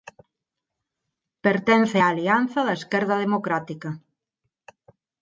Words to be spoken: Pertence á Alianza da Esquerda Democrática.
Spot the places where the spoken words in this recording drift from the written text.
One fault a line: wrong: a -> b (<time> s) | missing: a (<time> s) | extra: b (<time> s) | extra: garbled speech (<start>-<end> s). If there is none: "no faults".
no faults